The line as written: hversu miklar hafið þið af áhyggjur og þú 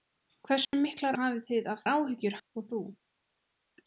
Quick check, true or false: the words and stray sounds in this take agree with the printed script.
false